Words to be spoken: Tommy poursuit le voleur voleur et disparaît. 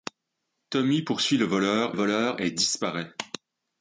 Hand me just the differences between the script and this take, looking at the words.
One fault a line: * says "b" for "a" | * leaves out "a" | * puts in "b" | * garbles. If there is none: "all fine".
all fine